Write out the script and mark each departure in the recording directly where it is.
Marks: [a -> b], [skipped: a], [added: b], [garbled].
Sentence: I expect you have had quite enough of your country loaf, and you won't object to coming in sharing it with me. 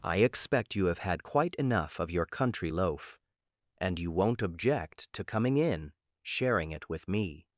I expect you have had quite enough of your country loaf, and you won't object to coming in sharing it with me.